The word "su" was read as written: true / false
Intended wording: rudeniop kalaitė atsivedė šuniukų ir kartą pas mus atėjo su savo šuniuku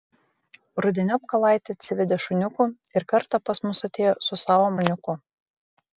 true